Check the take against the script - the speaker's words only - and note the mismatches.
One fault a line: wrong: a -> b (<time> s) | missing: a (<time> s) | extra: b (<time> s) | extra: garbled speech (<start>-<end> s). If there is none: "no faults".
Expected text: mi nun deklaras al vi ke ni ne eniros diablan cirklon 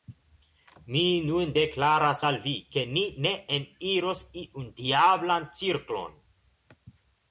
extra: iun (4.4 s)